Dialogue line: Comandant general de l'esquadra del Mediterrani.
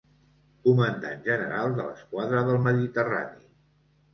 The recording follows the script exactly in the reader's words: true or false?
true